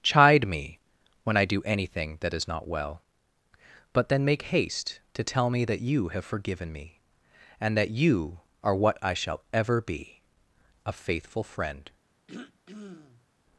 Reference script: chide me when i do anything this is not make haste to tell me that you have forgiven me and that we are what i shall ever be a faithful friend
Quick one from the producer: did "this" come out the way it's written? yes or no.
no